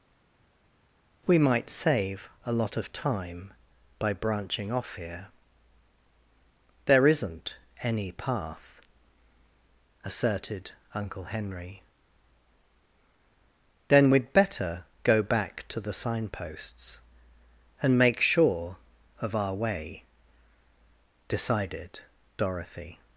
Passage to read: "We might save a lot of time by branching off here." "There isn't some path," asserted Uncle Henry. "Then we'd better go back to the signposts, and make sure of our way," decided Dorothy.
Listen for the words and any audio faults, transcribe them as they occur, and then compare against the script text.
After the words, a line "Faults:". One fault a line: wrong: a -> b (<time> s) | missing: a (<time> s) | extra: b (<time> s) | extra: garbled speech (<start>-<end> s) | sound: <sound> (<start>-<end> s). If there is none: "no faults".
"We might save a lot of time by branching off here." "There isn't any path," asserted Uncle Henry. "Then we'd better go back to the signposts, and make sure of our way," decided Dorothy.
Faults:
wrong: some -> any (7.8 s)